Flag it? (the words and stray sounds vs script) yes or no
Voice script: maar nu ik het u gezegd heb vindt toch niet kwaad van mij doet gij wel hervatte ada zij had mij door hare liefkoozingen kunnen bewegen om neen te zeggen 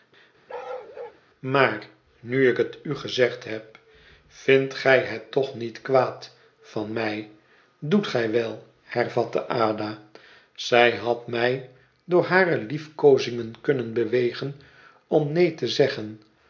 yes